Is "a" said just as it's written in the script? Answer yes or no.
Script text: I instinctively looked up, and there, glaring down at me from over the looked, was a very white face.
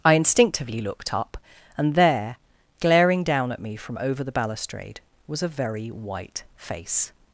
yes